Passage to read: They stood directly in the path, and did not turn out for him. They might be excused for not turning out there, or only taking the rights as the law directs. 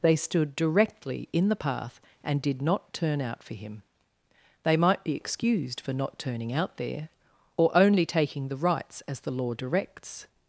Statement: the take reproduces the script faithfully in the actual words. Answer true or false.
true